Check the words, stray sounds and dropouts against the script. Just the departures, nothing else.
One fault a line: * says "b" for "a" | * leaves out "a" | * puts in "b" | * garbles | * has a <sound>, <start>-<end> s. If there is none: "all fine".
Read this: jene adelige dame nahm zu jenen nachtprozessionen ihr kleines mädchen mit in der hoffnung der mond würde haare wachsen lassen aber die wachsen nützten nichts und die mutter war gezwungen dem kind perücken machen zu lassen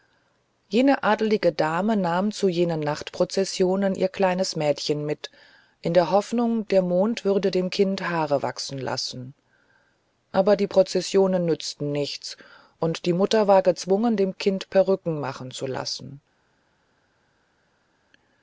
* puts in "dem kind"
* says "prozessionen" for "wachsen"